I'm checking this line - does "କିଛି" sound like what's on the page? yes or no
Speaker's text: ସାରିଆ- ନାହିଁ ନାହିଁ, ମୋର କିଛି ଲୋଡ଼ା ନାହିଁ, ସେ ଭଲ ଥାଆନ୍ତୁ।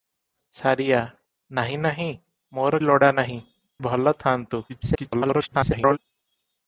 no